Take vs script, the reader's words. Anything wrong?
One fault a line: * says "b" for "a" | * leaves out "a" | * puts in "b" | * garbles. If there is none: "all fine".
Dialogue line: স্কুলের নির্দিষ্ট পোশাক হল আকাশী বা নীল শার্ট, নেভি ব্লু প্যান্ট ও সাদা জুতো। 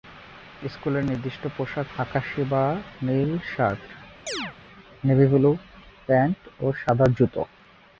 * leaves out "হল"